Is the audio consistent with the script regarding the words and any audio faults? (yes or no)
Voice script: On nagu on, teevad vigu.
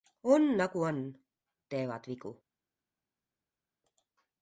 yes